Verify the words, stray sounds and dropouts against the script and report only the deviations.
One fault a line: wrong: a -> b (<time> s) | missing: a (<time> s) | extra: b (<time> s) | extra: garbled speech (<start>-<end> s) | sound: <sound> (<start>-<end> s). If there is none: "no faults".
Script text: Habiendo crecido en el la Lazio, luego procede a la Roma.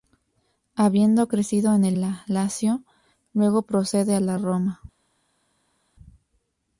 no faults